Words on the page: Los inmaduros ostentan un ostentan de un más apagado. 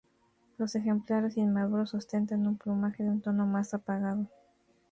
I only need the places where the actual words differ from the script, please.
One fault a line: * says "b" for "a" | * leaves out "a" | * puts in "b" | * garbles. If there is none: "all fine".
* puts in "ejemplares"
* says "plumaje" for "ostentan"
* puts in "tono"